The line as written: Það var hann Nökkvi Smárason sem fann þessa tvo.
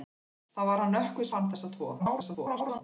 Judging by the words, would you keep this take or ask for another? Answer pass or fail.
fail